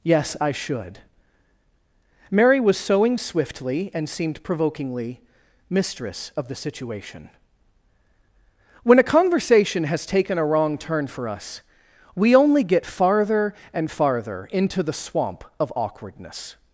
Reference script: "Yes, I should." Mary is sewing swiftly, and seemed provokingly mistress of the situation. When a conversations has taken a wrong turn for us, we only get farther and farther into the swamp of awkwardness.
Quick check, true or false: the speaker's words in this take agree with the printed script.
false